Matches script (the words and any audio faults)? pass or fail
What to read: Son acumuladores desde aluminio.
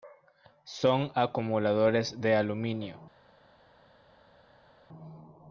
fail